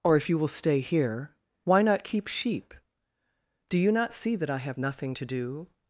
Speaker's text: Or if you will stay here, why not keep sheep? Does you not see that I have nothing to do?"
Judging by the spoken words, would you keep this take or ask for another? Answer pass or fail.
fail